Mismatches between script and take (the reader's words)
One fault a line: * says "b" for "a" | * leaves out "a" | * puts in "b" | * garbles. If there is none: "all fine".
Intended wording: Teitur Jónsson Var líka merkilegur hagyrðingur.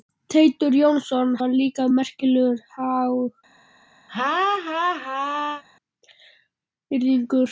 all fine